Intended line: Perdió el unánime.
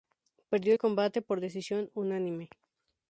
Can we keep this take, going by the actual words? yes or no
no